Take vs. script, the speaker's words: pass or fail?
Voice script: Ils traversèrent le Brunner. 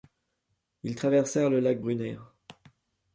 fail